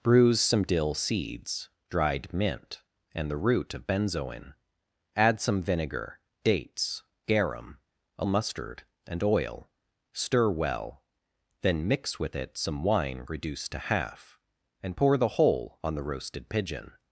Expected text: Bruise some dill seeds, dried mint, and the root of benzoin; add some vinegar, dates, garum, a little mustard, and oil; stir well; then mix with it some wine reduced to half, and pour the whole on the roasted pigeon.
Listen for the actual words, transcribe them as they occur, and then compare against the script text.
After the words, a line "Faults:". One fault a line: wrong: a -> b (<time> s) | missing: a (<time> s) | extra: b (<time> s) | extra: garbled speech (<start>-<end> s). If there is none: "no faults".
Bruise some dill seeds, dried mint, and the root of benzoin; add some vinegar, dates, garum, a mustard, and oil; stir well; then mix with it some wine reduced to half, and pour the whole on the roasted pigeon.
Faults:
missing: little (8.2 s)